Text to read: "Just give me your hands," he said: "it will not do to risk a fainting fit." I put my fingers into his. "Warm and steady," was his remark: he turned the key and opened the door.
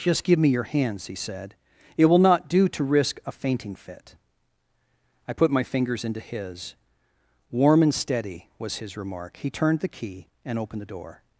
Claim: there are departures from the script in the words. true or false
false